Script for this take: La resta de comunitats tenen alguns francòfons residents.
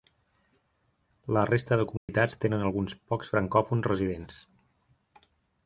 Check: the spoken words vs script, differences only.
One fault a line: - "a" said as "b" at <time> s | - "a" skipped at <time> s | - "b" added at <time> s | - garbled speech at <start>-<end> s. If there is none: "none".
- "pocs" added at 3.1 s